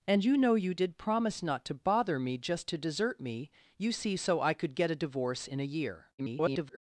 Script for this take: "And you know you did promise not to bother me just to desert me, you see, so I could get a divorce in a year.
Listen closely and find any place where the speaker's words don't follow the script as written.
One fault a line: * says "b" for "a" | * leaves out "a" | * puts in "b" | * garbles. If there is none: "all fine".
* garbles